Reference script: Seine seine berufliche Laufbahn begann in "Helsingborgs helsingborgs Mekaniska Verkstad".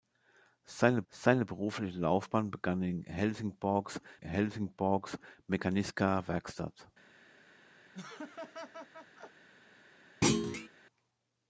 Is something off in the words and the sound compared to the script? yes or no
yes